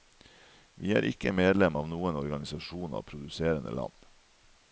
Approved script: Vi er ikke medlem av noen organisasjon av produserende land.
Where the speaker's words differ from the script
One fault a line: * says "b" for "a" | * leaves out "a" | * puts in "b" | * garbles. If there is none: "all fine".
all fine